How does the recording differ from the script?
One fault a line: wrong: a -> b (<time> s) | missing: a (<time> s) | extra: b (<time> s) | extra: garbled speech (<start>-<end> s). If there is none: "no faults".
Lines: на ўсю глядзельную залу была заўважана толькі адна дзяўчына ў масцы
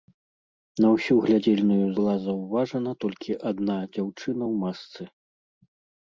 missing: залу (1.9 s)